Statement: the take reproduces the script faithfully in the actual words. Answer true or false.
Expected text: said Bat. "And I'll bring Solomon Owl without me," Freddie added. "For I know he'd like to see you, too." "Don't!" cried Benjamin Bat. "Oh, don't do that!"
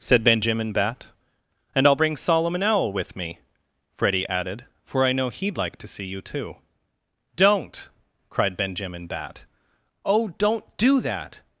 false